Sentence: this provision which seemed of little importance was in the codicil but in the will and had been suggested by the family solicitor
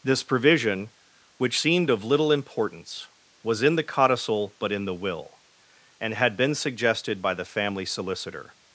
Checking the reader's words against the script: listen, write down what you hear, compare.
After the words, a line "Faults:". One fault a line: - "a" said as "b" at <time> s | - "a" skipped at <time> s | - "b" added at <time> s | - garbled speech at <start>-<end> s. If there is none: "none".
this provision which seemed of little importance was in the codicil but in the will and had been suggested by the family solicitor
Faults:
none